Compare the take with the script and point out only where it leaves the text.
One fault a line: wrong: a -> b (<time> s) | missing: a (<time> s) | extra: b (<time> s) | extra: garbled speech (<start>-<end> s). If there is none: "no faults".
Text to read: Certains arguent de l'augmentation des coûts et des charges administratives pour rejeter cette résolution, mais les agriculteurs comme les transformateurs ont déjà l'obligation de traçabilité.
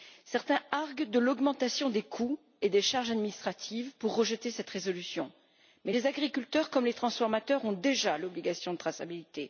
no faults